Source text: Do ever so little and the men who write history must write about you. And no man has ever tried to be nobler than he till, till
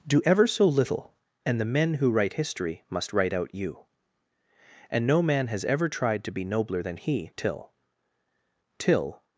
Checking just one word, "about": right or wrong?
wrong